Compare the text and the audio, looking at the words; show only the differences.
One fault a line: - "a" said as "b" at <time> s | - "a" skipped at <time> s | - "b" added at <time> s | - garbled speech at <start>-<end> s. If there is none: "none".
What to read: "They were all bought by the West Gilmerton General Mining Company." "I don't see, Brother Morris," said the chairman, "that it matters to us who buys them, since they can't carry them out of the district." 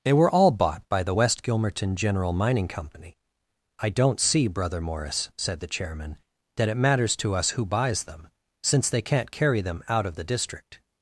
none